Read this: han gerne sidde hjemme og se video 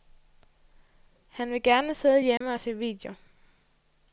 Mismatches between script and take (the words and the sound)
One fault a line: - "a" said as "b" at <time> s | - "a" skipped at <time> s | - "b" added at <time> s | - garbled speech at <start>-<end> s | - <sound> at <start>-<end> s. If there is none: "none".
- "vil" added at 1.5 s
- dropout at 2.4-2.4 s